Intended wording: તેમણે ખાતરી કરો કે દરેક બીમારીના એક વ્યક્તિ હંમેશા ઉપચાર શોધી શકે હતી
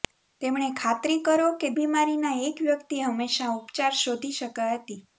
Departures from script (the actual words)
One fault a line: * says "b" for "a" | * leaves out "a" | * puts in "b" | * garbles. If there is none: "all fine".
* leaves out "દરેક"